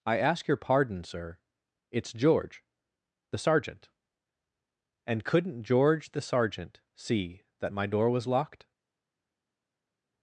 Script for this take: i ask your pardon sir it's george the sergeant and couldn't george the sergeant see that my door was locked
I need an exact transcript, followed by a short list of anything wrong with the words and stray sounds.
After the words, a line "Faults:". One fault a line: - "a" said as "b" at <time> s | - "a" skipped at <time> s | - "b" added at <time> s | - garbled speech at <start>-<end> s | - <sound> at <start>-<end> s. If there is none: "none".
i ask your pardon sir it's george the sergeant and couldn't george the sergeant see that my door was locked
Faults:
none